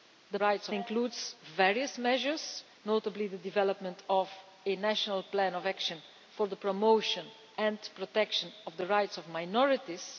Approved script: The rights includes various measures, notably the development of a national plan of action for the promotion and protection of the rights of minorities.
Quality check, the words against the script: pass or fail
pass